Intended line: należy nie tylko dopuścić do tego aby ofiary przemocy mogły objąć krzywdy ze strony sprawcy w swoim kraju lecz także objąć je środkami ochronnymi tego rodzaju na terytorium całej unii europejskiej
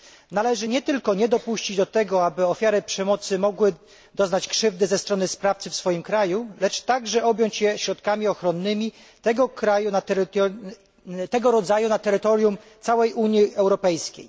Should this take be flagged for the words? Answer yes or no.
yes